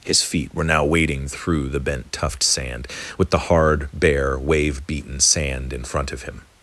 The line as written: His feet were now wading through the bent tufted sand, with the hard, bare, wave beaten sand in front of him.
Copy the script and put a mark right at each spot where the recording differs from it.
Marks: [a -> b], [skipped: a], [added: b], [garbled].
His feet were now wading through the bent [tufted -> tuft] sand, with the hard, bare, wave beaten sand in front of him.